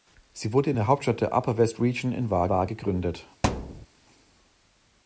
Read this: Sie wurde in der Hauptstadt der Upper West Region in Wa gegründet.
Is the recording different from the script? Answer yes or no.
yes